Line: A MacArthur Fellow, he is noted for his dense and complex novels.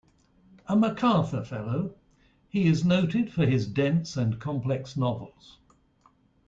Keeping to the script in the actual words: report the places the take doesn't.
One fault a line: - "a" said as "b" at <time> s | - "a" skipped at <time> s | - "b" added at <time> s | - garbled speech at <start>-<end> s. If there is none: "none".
none